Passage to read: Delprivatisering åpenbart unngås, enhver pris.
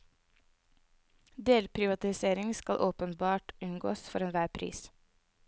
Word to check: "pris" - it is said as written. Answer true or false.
true